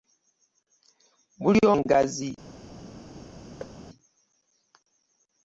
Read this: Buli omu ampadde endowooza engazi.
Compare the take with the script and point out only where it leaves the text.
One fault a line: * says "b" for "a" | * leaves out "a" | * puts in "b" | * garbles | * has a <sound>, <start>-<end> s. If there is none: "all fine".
* leaves out "omu ampadde endowooza"
* has a thud, 3.6-3.8 s